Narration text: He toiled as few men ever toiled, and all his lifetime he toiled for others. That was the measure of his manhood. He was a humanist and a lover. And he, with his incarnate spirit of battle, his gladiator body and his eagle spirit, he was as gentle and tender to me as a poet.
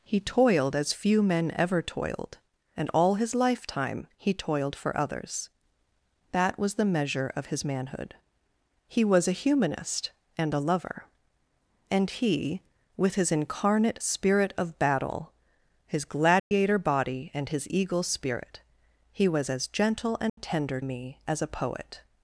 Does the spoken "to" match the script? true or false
false